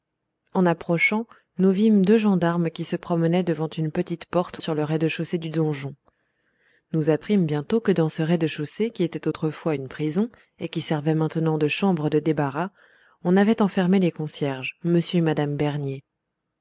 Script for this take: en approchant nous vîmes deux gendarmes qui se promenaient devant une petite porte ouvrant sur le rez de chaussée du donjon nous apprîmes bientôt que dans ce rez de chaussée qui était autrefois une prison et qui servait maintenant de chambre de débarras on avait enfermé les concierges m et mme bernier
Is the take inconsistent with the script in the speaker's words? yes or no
yes